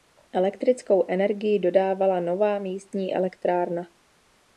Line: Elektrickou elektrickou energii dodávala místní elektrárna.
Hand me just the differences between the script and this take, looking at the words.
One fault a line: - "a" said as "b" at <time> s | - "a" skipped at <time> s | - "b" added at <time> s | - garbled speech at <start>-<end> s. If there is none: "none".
- "elektrickou" skipped at 1.1 s
- "nová" added at 2.2 s